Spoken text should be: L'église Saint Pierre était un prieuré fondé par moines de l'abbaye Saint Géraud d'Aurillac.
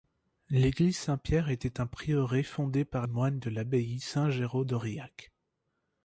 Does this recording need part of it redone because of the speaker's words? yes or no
no